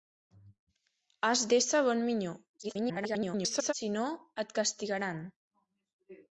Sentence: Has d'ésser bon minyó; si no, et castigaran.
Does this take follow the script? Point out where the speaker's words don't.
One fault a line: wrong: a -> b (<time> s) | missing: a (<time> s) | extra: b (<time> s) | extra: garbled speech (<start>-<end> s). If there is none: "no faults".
extra: garbled speech (2.6-3.7 s)